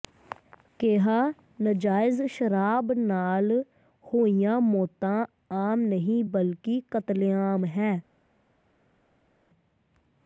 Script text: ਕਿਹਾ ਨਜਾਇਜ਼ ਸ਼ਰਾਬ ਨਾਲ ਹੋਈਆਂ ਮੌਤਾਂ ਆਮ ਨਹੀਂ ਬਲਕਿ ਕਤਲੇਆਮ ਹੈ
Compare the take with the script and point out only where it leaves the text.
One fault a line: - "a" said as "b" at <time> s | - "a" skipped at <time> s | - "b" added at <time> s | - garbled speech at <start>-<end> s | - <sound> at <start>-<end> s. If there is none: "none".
none